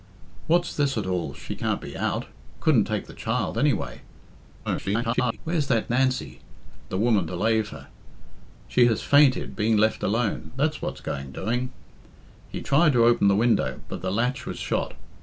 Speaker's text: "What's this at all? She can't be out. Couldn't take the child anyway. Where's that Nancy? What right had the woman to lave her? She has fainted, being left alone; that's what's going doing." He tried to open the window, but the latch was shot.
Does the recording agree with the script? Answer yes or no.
no